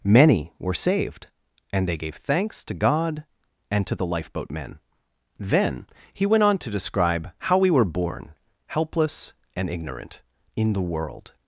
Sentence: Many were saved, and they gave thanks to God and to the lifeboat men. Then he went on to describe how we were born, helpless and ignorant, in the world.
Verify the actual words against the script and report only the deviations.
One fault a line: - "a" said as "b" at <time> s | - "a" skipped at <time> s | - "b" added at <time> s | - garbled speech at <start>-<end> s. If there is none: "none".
none